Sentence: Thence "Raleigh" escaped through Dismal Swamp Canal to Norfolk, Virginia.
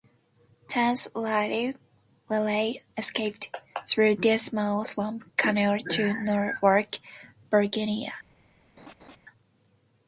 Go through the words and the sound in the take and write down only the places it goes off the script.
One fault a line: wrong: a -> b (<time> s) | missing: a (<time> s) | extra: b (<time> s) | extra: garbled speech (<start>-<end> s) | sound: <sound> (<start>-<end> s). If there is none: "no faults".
sound: laugh (8.8-9.2 s)